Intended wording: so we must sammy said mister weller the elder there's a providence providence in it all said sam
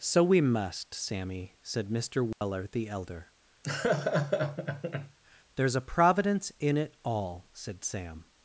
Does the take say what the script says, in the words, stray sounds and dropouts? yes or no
no